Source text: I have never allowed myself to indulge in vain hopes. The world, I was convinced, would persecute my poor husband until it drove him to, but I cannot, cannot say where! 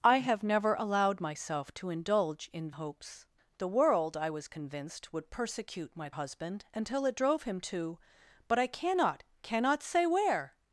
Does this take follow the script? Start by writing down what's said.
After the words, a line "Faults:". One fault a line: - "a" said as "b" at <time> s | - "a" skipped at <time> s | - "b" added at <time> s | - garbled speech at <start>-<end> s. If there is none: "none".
I have never allowed myself to indulge in hopes. The world, I was convinced, would persecute my husband until it drove him to, but I cannot, cannot say where!
Faults:
- "vain" skipped at 2.7 s
- "poor" skipped at 6.1 s